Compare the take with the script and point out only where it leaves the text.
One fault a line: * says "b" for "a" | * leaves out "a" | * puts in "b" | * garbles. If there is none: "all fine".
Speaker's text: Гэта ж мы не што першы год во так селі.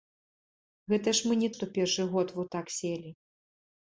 all fine